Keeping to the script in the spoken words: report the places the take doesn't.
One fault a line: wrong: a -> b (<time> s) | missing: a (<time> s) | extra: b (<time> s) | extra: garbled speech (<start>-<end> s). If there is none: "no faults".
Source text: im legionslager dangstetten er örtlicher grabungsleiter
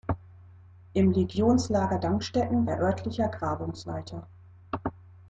no faults